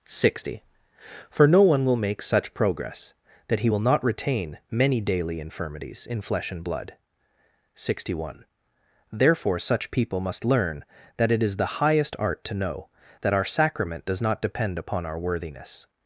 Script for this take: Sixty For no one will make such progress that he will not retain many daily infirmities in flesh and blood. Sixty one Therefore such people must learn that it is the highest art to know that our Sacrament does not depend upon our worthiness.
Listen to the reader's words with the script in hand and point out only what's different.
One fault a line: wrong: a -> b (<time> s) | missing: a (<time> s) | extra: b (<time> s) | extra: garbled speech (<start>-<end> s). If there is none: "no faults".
no faults